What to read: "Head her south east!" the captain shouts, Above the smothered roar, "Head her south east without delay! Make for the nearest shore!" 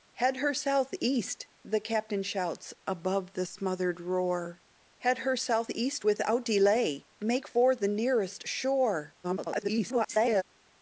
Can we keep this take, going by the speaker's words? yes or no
no